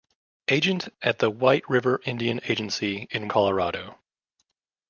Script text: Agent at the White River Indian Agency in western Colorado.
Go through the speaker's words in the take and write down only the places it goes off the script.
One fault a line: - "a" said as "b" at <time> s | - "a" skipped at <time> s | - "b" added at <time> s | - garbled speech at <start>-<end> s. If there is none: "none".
- "western" skipped at 3.3 s